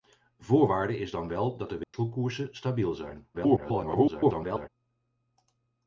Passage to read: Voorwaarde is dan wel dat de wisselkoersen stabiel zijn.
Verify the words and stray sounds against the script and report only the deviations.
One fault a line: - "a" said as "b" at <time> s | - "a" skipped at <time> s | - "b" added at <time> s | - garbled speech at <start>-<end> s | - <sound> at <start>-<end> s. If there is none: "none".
- dropout at 1.8-1.9 s
- garbled speech at 3.3-4.7 s